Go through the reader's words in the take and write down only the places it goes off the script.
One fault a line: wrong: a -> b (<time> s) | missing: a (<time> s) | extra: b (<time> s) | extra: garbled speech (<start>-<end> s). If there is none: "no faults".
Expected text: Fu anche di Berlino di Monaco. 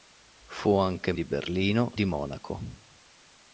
no faults